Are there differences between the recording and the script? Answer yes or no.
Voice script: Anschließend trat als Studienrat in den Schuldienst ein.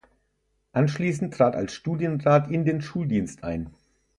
no